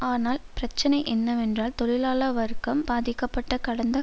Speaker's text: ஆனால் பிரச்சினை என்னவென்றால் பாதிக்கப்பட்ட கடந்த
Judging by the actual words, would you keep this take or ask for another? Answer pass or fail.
fail